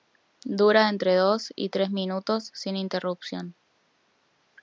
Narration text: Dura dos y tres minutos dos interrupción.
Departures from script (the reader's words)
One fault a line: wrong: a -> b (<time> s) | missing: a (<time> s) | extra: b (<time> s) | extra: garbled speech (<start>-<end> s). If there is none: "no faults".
extra: entre (0.9 s)
wrong: dos -> sin (2.5 s)